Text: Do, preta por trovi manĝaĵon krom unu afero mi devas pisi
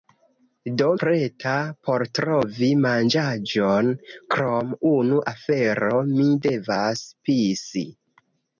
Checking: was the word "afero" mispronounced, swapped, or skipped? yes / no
no